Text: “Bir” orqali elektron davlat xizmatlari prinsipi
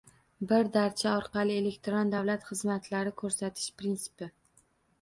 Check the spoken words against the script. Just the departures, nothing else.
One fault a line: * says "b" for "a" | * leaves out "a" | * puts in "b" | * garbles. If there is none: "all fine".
* puts in "darcha"
* puts in "ko‘rsatish"